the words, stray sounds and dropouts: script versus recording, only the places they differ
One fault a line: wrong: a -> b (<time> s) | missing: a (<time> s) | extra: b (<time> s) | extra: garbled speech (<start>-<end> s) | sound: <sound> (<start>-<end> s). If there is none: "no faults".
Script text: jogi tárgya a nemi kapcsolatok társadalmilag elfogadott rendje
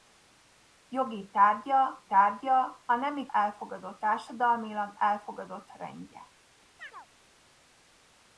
extra: tárgya (2.0 s)
wrong: kapcsolatok -> elfogadott (3.3 s)
sound: chirp (6.8-7.1 s)